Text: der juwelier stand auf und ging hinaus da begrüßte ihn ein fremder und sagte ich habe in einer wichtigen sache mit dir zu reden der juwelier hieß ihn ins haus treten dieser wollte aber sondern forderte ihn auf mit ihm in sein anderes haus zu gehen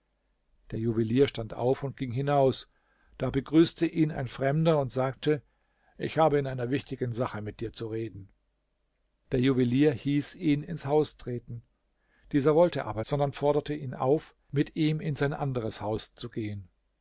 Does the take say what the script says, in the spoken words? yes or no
yes